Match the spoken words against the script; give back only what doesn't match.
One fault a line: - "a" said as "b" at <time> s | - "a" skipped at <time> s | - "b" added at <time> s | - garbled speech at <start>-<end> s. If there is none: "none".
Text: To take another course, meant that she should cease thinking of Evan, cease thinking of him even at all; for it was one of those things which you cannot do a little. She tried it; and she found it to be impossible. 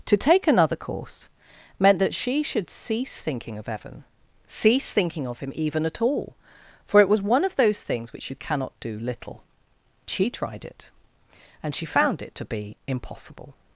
- "a" skipped at 9.0 s